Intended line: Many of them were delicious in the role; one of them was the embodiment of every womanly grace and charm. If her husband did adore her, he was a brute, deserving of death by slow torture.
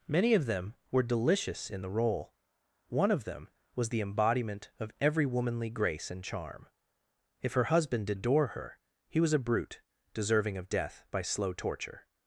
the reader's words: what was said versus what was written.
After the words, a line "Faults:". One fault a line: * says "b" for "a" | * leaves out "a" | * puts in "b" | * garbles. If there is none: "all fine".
Many of them were delicious in the role; one of them was the embodiment of every womanly grace and charm. If her husband did adore her, he was a brute, deserving of death by slow torture.
Faults:
all fine